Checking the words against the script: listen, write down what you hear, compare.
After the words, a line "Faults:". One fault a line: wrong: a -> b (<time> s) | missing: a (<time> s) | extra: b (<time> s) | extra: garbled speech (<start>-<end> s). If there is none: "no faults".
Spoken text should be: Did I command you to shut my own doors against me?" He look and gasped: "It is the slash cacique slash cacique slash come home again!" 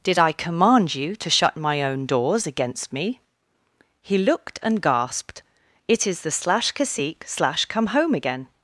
Did I command you to shut my own doors against me?" He looked and gasped: "It is the slash cacique slash come home again!"
Faults:
wrong: look -> looked (4.2 s)
missing: cacique slash (7.7 s)